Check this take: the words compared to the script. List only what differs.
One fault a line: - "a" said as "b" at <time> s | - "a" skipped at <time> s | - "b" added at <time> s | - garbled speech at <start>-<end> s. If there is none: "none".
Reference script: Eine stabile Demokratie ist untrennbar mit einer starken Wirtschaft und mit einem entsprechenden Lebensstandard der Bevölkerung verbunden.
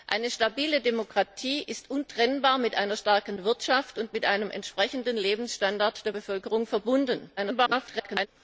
- garbled speech at 7.4-8.3 s